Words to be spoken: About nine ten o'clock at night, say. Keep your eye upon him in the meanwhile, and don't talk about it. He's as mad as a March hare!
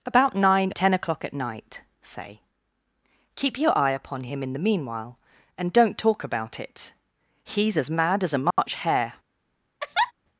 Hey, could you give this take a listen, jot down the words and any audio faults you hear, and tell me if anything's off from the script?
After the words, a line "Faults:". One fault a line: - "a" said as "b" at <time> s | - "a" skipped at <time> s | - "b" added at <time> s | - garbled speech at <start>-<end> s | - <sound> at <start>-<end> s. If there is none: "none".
About nine ten o'clock at night, say. Keep your eye upon him in the meanwhile, and don't talk about it. He's as mad as a March hare!
Faults:
- dropout at 8.5-8.6 s
- laugh at 9.8-10.1 s